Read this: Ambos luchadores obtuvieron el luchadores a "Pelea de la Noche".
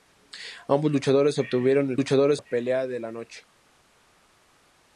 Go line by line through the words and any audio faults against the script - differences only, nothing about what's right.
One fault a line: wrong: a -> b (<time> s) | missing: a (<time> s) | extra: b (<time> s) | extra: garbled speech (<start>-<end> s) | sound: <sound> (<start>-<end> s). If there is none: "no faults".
no faults